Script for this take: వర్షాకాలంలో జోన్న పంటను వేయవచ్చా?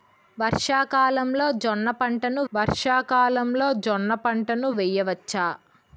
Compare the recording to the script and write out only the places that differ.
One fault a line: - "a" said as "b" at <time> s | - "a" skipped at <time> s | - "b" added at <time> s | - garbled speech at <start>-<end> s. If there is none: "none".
- "వర్షాకాలంలో జోన్న పంటను" added at 2.5 s